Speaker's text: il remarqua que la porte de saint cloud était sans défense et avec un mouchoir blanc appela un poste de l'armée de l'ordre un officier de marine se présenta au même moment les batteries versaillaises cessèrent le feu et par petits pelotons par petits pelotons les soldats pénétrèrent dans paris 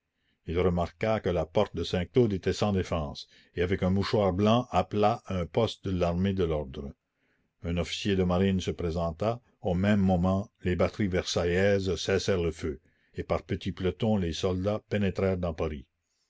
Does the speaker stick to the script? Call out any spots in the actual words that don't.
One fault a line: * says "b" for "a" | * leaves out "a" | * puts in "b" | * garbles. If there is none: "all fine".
* leaves out "par petits pelotons"